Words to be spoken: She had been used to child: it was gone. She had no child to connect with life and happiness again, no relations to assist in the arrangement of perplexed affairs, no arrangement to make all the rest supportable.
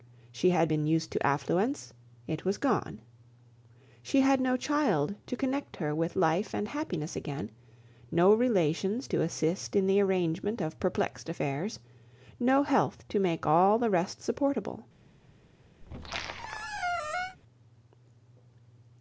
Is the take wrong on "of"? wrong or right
right